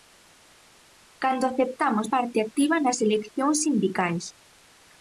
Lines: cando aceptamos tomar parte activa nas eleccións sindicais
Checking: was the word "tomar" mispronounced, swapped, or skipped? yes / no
yes